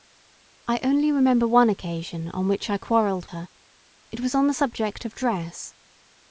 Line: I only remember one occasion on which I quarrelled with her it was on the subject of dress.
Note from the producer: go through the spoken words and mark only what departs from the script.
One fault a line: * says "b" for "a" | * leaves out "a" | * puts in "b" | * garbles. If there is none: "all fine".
* leaves out "with"